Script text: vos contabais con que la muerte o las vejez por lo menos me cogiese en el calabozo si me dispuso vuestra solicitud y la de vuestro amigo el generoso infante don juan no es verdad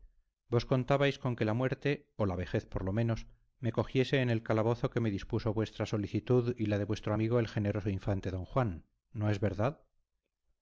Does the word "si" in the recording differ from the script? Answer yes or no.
yes